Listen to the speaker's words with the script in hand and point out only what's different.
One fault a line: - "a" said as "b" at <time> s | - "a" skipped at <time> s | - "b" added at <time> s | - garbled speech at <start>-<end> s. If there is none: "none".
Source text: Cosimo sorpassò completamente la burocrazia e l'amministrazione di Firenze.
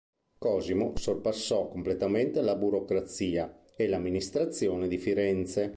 none